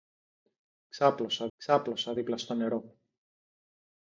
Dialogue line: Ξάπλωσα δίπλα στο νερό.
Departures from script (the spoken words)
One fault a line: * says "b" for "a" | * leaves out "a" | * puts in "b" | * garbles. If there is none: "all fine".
* puts in "ξάπλωσα"